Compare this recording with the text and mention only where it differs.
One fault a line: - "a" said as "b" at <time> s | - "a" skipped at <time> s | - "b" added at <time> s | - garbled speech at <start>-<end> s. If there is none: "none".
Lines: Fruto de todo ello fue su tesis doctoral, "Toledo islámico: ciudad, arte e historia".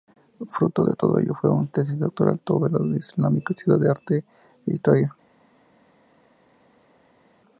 none